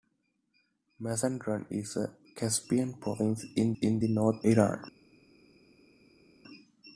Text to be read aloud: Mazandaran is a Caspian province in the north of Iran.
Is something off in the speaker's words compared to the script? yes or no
yes